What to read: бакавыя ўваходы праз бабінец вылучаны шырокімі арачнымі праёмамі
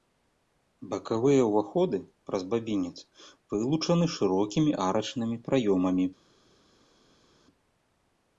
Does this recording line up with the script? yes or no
yes